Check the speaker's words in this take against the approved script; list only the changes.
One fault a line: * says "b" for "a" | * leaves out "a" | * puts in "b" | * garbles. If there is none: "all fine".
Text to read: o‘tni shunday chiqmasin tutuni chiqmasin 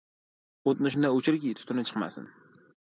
* says "o‘chirki" for "chiqmasin"